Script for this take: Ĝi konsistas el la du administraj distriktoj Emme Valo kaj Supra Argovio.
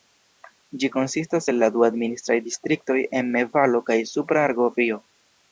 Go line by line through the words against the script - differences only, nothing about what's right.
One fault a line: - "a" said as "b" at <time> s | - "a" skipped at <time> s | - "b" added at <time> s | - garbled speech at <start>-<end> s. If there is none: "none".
none